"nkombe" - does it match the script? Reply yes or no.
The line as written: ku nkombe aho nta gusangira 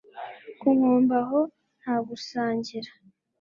yes